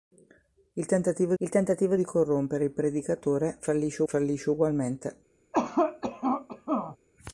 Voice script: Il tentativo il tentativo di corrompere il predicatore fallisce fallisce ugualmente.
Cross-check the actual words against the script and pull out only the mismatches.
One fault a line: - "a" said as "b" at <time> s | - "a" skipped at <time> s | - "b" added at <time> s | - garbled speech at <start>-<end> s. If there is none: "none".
none